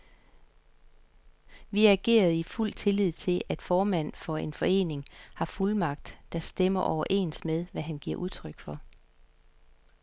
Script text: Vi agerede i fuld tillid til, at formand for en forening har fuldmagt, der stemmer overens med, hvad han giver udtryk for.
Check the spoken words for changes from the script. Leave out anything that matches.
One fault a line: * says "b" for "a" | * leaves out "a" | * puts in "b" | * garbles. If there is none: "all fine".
all fine